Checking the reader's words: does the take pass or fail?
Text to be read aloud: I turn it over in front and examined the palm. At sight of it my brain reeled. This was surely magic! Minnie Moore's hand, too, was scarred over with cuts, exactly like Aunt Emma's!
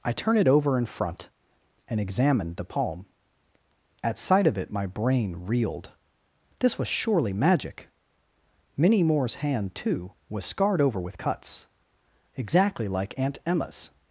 pass